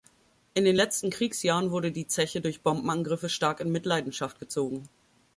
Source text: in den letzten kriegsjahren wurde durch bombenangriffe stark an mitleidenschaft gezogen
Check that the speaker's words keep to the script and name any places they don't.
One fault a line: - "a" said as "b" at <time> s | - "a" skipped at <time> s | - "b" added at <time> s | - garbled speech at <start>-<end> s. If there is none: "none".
- "die zeche" added at 1.9 s
- "an" said as "in" at 3.6 s